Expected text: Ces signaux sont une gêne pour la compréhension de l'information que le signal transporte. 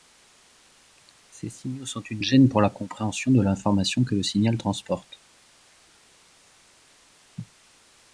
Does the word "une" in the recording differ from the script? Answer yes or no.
no